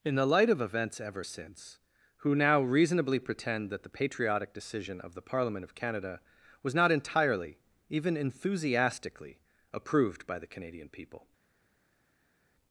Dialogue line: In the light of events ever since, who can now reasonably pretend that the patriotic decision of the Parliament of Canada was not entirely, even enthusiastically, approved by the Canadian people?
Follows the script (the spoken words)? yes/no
no